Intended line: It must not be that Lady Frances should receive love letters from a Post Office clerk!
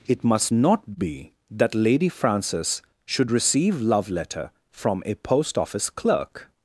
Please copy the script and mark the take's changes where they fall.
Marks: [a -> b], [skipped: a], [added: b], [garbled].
It must not be that Lady Frances should receive love [letters -> letter] from a Post Office clerk!